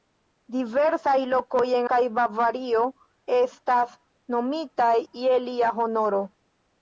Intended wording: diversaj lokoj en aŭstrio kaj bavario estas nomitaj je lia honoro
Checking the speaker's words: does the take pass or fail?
fail